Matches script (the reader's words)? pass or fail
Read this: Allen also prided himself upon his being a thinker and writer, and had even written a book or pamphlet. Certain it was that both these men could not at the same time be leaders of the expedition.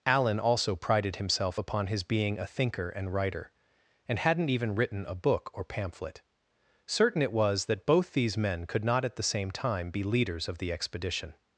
fail